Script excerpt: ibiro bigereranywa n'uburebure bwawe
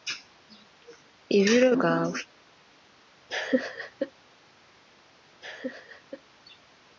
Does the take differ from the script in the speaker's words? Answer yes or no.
yes